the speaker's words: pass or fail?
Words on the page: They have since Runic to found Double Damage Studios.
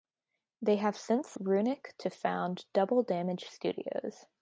pass